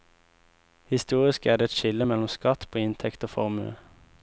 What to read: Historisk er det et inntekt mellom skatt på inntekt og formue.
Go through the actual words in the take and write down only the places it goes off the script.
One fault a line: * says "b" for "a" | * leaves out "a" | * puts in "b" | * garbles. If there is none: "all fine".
* says "skille" for "inntekt"